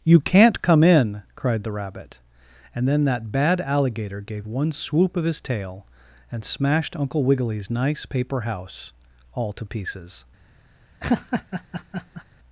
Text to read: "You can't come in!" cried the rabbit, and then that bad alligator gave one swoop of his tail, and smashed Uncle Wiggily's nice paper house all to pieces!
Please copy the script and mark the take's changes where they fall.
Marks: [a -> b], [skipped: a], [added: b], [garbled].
"You can't come in!" cried the rabbit, and then that bad alligator gave one swoop of his tail, and smashed Uncle Wiggily's nice paper house all to pieces!